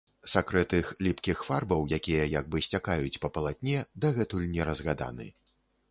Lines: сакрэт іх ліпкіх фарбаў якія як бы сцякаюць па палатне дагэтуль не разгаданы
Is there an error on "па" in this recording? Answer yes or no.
no